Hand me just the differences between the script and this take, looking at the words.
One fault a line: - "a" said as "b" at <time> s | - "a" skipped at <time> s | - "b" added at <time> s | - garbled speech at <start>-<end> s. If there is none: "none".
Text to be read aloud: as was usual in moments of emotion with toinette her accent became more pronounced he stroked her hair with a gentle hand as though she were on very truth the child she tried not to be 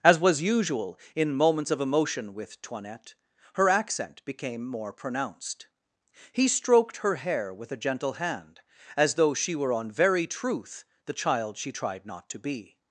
none